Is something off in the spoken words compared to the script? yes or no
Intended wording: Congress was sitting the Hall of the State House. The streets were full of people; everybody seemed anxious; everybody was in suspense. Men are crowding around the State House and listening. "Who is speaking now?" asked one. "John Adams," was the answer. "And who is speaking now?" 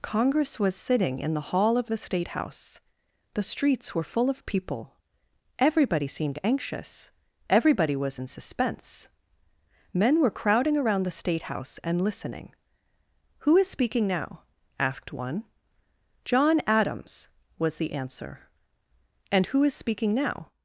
yes